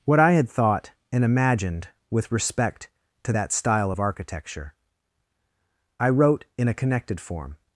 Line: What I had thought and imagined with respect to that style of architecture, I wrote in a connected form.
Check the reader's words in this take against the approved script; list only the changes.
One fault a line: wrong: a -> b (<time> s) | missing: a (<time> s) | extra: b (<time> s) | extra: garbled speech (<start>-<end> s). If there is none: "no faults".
no faults